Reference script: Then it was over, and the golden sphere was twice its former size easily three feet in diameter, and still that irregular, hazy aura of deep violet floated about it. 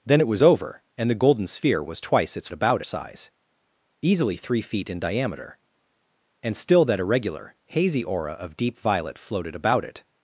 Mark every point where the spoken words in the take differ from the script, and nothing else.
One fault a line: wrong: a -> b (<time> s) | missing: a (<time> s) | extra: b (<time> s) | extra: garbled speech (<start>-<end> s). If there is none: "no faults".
wrong: former -> about (2.5 s)